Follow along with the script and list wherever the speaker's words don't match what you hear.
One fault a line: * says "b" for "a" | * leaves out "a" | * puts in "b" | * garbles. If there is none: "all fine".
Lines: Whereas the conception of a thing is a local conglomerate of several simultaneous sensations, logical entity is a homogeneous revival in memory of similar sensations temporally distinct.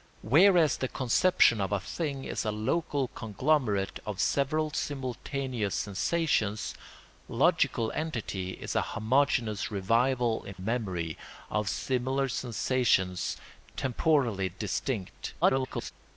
* garbles